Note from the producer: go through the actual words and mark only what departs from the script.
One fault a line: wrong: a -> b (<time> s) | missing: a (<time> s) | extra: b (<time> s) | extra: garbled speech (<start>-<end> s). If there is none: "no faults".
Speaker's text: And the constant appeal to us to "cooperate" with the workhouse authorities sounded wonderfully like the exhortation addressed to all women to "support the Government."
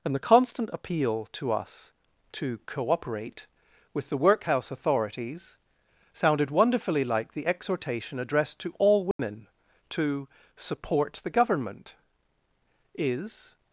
extra: Is (12.9 s)